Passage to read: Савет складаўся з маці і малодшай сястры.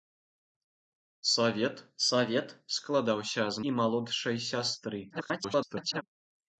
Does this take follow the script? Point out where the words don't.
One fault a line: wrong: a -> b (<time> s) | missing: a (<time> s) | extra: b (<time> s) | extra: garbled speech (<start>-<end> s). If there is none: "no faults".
extra: савет (2.1 s)
missing: маці (3.6 s)
extra: garbled speech (5.1-6.0 s)